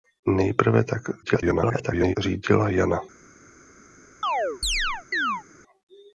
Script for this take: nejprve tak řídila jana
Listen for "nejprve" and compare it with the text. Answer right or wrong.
right